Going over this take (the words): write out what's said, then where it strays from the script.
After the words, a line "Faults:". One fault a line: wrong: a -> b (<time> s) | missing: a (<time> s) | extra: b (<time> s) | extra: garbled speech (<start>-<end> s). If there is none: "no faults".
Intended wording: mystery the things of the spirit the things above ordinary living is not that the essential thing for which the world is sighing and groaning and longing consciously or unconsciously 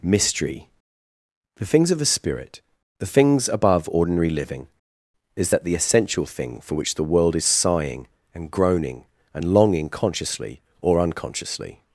mystery the things of the spirit the things above ordinary living is that the essential thing for which the world is sighing and groaning and longing consciously or unconsciously
Faults:
missing: not (5.5 s)